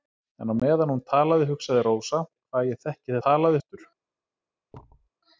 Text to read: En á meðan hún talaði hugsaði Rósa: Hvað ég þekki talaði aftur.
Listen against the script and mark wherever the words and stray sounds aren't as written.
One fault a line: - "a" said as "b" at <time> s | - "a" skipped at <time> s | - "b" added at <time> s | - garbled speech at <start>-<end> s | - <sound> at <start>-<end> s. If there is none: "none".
- thud at 4.7-5.1 s